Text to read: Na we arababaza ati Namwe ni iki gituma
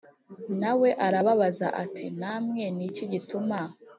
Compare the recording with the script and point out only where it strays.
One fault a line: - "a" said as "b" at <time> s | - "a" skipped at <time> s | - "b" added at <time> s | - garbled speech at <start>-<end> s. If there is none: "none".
none